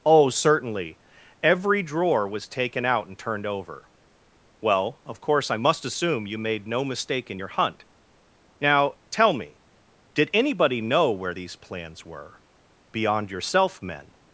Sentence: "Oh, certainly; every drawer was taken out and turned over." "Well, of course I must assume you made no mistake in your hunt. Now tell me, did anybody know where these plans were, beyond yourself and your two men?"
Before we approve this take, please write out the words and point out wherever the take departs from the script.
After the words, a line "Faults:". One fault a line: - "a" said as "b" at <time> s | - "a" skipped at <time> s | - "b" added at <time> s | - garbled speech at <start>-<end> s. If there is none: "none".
"Oh, certainly; every drawer was taken out and turned over." "Well, of course I must assume you made no mistake in your hunt. Now tell me, did anybody know where these plans were, beyond yourself men?"
Faults:
- "and your two" skipped at 13.8 s